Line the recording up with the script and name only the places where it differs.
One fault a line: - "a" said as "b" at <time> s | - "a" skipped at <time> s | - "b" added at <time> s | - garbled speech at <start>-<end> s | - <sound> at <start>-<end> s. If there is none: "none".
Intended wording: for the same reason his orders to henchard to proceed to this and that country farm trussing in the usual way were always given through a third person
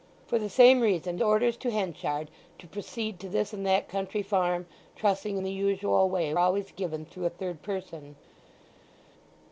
- "his" skipped at 1.2 s
- "were" skipped at 6.3 s